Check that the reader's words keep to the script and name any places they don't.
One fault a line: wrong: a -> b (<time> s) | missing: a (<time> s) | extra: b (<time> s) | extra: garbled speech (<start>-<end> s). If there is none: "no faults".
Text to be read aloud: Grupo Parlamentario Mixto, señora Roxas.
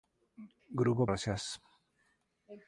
missing: Parlamentario Mixto señora (1.0 s)